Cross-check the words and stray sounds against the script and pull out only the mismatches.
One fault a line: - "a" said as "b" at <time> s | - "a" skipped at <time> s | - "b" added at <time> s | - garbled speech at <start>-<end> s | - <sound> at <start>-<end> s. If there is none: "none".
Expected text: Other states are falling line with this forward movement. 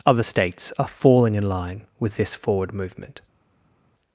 - "in" added at 1.3 s